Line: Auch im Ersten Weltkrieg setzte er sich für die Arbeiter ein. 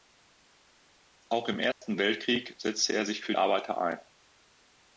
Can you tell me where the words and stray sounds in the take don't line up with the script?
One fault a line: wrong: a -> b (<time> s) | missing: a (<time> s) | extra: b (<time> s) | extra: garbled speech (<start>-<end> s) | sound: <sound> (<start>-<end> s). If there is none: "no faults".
sound: dropout (1.7-1.8 s)
missing: die (3.4 s)